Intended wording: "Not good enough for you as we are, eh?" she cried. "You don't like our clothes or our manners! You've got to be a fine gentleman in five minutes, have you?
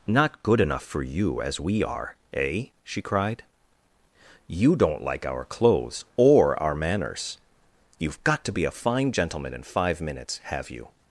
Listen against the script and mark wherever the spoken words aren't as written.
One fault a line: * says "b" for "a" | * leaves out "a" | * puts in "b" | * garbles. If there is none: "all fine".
all fine